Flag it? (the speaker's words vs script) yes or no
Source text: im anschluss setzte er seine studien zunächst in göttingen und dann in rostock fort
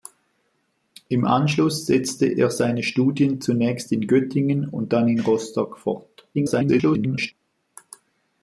yes